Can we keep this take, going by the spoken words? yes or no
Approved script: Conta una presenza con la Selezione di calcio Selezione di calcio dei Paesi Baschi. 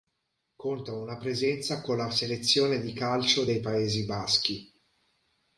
no